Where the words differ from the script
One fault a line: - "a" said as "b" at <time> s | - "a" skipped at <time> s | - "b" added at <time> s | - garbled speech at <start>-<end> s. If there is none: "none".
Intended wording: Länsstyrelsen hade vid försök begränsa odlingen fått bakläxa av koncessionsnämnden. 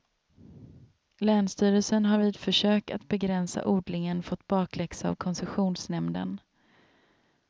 - "hade" said as "har" at 2.0 s
- "att" added at 2.9 s